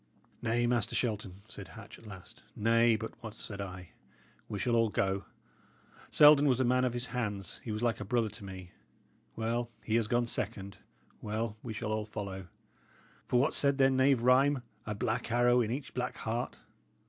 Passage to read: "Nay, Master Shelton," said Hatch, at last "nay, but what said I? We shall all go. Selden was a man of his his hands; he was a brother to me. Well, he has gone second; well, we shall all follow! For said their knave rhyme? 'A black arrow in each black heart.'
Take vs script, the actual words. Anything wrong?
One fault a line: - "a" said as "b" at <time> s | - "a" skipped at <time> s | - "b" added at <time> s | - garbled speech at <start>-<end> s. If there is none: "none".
- "his" skipped at 7.0 s
- "like" added at 7.8 s
- "what" added at 13.4 s